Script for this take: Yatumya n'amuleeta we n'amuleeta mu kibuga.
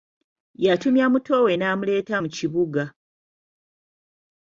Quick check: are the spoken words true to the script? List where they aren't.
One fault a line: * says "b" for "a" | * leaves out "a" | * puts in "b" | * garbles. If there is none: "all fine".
* says "muto" for "n'amuleeta"